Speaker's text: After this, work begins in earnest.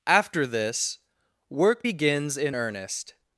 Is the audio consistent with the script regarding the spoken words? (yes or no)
yes